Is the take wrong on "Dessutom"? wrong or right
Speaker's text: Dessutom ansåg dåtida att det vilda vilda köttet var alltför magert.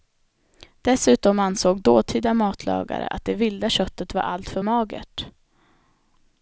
right